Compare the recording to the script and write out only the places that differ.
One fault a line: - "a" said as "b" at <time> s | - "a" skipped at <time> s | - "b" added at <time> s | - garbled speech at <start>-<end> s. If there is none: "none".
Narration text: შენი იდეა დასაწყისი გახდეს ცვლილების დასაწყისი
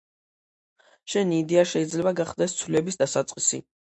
- "დასაწყისი" said as "შეიძლება" at 1.7 s